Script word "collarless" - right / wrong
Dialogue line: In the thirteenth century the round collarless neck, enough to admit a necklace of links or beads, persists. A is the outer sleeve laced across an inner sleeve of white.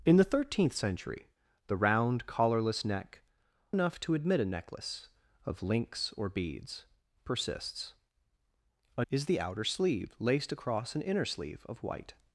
right